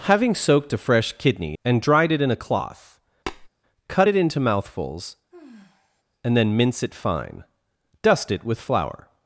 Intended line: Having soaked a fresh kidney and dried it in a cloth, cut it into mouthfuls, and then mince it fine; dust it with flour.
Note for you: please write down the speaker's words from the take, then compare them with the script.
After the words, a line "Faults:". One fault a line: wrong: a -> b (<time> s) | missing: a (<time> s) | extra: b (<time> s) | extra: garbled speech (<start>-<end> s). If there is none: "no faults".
Having soaked a fresh kidney and dried it in a cloth, cut it into mouthfuls, and then mince it fine; dust it with flour.
Faults:
no faults